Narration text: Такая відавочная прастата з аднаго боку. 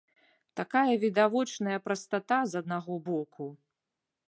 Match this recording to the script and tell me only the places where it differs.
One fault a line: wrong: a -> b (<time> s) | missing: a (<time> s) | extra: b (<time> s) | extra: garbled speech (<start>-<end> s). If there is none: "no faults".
no faults